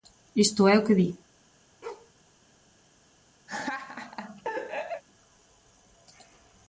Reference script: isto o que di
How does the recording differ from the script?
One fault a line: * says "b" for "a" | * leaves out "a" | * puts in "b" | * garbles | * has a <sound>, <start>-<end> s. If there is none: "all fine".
* puts in "é"
* has a bark, 1.8-2.1 s
* has a laugh, 3.5-5.0 s